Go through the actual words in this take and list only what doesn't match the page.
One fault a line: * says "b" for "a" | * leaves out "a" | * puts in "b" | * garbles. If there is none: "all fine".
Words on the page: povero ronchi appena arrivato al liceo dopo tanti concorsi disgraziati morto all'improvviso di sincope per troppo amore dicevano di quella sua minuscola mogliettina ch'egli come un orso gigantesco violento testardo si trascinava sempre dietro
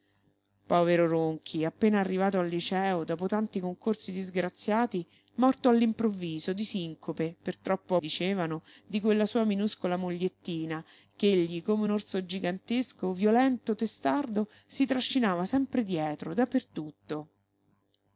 * leaves out "amore"